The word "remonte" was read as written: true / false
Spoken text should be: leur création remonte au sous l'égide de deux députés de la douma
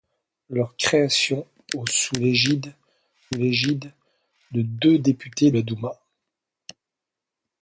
false